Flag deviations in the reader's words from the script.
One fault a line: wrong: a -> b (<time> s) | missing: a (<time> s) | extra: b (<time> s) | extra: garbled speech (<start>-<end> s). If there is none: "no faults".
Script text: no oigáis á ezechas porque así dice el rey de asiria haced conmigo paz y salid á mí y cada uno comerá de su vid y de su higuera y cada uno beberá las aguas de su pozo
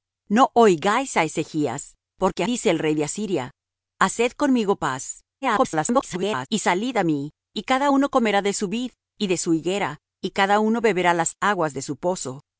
missing: así (2.4 s)
extra: garbled speech (5.4-6.5 s)